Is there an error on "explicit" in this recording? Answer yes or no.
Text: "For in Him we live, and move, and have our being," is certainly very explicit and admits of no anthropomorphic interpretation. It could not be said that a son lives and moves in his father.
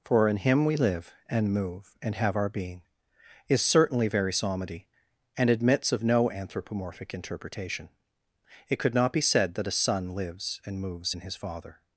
yes